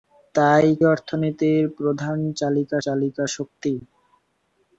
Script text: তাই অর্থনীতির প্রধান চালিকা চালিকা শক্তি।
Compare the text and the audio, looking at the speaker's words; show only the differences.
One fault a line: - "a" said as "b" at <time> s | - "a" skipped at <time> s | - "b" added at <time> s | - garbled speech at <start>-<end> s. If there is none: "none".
none